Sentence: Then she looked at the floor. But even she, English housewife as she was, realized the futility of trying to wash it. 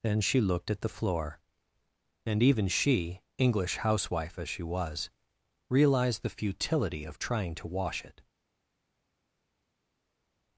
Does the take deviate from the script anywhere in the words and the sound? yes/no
yes